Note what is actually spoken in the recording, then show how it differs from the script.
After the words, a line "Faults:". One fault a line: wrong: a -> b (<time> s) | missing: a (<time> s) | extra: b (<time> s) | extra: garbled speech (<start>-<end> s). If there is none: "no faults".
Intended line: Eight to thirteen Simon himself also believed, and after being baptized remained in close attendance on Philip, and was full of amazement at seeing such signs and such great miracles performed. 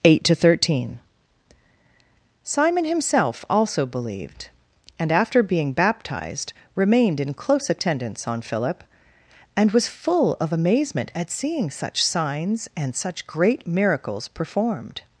Eight to thirteen Simon himself also believed, and after being baptized remained in close attendance on Philip, and was full of amazement at seeing such signs and such great miracles performed.
Faults:
no faults